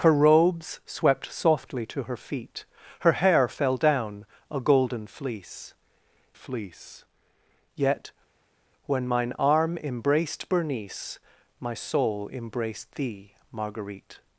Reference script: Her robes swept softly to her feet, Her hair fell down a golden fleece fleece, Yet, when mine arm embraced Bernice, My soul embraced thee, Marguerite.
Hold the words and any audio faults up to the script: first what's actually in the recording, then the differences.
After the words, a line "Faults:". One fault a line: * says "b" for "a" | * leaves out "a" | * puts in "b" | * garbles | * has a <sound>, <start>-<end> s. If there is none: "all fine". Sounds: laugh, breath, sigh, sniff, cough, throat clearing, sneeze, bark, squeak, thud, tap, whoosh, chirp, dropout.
Her robes swept softly to her feet, Her hair fell down a golden fleece fleece, Yet, when mine arm embraced Bernice, My soul embraced thee, Marguerite.
Faults:
all fine